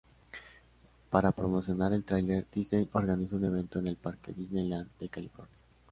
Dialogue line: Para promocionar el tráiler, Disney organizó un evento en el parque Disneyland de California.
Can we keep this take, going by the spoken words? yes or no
yes